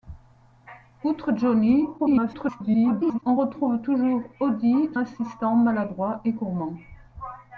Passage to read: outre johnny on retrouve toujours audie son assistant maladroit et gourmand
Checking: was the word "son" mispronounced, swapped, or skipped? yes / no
yes